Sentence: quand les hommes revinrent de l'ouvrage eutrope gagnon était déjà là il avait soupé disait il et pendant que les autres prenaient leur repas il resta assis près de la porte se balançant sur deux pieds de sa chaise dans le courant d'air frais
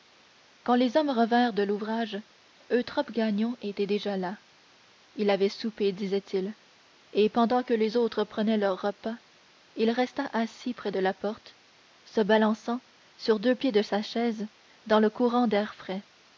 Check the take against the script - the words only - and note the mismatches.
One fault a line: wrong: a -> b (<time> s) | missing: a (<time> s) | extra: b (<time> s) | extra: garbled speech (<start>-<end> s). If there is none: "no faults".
no faults